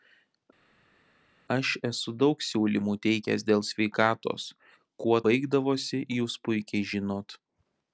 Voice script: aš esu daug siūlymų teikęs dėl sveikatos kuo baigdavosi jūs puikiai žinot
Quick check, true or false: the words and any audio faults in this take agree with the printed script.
true